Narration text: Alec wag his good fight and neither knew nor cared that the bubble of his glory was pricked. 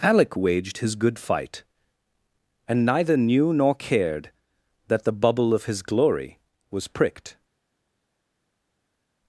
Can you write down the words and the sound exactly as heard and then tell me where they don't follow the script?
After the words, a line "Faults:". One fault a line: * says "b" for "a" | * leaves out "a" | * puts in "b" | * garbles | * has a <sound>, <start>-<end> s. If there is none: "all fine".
Alec waged his good fight and neither knew nor cared that the bubble of his glory was pricked.
Faults:
* says "waged" for "wag"